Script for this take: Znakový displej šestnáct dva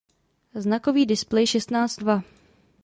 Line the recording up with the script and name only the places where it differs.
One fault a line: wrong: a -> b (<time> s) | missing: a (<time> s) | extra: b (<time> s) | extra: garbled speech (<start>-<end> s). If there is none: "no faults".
no faults